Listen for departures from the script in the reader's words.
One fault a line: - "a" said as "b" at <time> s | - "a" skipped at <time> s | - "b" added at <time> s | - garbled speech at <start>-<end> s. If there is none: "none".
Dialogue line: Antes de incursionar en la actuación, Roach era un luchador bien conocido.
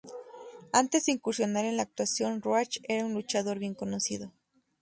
none